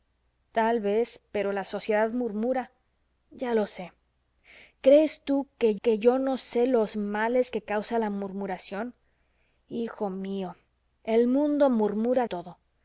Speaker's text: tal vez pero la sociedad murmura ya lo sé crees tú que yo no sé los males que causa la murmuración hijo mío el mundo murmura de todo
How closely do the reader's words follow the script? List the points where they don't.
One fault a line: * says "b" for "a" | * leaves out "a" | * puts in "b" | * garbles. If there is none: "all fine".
* puts in "que"
* leaves out "de"